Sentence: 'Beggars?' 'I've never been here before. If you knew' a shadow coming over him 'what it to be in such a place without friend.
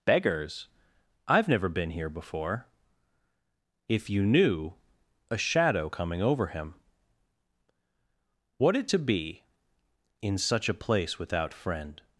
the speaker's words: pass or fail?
pass